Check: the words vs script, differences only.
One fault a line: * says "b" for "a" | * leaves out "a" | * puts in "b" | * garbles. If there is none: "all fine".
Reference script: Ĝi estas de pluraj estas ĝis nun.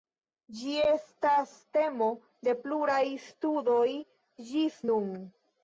* puts in "temo"
* says "studoj" for "estas"